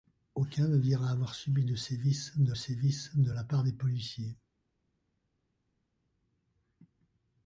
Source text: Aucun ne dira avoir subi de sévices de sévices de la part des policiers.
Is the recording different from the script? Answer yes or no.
no